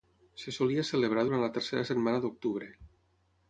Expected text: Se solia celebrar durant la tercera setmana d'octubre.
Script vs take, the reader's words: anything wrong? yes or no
no